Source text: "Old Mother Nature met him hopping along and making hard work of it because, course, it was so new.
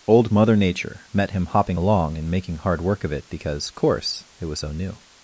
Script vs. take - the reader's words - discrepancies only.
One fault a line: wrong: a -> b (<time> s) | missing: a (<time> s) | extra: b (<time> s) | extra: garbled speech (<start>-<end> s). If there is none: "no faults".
no faults